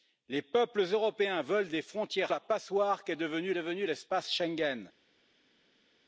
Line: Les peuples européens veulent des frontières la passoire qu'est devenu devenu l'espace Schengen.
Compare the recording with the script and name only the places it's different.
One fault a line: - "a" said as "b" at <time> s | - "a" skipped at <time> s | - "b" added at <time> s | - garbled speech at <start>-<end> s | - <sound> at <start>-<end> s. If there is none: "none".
none